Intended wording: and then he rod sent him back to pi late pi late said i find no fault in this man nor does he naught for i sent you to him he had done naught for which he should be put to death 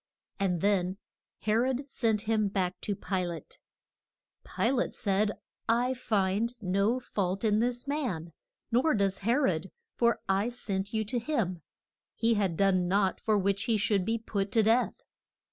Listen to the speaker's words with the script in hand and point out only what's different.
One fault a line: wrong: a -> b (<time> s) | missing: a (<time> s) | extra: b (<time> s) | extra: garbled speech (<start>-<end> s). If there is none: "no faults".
wrong: naught -> rod (9.3 s)